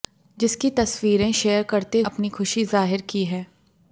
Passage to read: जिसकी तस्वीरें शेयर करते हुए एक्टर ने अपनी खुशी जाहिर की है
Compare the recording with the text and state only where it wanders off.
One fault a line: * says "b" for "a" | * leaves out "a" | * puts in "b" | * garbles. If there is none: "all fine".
* leaves out "हुए एक्टर ने"